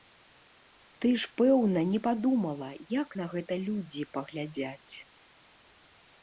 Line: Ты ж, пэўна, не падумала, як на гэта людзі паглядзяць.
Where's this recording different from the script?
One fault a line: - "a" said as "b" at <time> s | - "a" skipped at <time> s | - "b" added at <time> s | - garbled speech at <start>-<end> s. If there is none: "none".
none